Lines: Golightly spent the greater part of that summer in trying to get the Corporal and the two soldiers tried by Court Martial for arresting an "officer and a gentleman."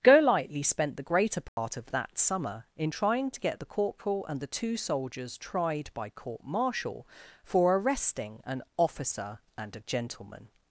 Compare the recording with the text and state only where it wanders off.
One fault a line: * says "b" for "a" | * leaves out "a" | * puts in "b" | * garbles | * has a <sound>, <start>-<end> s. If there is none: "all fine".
* has a dropout, 1.5-1.6 s